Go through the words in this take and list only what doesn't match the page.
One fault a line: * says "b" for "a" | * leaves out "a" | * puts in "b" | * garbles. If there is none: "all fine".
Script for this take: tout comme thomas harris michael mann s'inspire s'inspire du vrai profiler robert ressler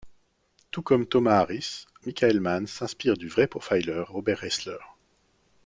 * leaves out "s'inspire"